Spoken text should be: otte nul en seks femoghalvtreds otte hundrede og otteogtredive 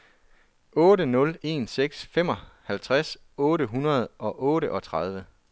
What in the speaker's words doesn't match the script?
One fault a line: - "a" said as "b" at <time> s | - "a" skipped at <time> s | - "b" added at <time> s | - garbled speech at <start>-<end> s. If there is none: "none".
none